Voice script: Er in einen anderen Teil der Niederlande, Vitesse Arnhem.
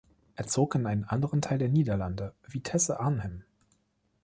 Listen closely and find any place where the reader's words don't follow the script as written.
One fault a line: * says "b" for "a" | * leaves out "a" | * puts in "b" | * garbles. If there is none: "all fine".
* puts in "zog"